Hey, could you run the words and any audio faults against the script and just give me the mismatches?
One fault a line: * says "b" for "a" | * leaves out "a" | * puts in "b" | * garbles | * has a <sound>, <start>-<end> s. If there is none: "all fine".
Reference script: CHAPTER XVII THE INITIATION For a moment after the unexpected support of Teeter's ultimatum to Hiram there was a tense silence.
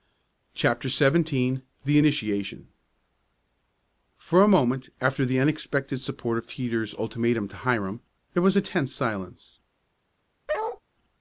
* has a bark, 10.5-10.8 s